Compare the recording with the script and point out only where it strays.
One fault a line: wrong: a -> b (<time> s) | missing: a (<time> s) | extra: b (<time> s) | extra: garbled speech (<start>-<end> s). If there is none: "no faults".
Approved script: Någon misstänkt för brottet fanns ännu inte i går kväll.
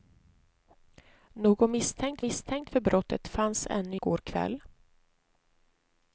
extra: misstänkt (2.2 s)
missing: inte (4.0 s)